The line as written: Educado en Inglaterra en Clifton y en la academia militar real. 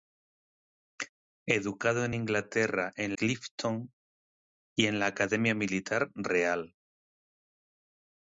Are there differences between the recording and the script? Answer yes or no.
no